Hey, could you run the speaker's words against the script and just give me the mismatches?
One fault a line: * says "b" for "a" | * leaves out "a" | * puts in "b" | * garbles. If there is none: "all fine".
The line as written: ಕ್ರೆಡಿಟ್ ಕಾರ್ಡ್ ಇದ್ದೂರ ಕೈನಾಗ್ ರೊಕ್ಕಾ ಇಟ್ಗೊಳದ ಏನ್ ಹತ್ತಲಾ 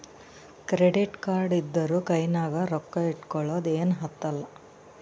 all fine